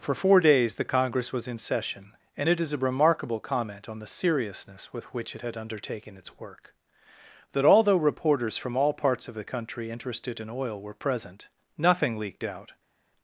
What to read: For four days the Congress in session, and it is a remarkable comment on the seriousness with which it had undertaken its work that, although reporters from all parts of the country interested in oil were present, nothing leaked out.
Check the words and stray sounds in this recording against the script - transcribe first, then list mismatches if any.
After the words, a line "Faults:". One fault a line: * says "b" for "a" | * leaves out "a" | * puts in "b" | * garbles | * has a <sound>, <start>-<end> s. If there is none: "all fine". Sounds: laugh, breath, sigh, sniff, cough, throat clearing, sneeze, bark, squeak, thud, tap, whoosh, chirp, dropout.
For four days the Congress was in session, and it is a remarkable comment on the seriousness with which it had undertaken its work that, although reporters from all parts of the country interested in oil were present, nothing leaked out.
Faults:
* puts in "was"